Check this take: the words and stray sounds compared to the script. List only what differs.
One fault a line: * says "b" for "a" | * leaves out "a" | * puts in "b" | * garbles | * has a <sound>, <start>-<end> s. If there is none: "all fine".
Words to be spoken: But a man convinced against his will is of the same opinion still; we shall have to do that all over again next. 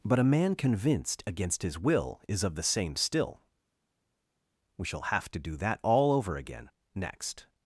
* leaves out "opinion"